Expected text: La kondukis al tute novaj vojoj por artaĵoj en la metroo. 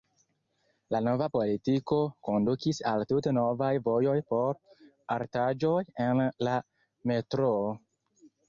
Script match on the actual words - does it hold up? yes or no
no